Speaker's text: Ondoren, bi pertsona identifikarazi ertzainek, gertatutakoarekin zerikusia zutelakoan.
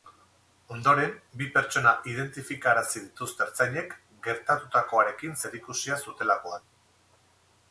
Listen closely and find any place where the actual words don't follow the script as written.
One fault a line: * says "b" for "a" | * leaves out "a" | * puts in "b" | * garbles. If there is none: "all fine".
* puts in "dituzte"